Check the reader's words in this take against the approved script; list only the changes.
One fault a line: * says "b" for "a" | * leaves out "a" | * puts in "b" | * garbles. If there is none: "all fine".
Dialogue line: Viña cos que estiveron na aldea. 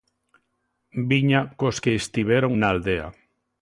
all fine